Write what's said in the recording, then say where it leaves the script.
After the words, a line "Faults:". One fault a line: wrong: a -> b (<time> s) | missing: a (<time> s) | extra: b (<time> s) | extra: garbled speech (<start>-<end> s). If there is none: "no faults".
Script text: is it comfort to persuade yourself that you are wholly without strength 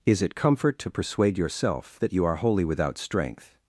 is it comfort to persuade yourself that you are wholly without strength
Faults:
no faults